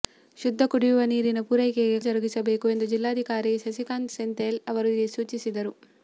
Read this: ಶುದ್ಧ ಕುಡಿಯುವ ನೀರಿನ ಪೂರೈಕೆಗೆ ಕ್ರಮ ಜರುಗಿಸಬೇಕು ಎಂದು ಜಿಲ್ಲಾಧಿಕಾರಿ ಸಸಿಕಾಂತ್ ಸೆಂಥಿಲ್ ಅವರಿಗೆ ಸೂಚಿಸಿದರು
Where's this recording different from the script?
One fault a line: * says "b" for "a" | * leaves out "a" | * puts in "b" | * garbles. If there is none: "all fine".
* leaves out "ಕ್ರಮ"